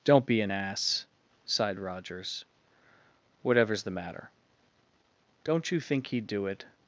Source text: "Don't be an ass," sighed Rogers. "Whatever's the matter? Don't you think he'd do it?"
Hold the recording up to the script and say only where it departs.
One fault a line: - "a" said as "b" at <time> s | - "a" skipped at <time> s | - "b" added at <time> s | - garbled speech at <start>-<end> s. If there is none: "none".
none